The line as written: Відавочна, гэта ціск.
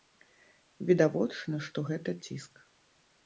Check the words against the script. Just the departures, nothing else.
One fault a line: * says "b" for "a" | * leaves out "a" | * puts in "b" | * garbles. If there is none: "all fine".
* puts in "што"